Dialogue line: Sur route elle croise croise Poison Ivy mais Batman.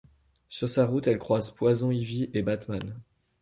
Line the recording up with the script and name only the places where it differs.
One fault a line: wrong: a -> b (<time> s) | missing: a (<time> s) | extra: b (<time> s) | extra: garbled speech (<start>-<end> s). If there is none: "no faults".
extra: sa (0.7 s)
missing: croise (1.5 s)
wrong: mais -> et (2.3 s)